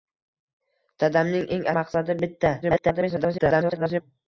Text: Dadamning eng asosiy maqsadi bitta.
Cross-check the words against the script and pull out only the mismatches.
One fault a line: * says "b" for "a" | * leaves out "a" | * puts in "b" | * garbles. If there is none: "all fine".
* leaves out "asosiy"
* garbles